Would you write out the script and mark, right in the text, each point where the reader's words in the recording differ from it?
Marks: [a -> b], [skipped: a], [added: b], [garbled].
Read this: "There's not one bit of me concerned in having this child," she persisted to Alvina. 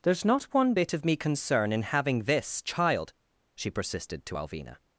"There's not one bit of me [concerned -> concern] in having this child," she persisted to Alvina.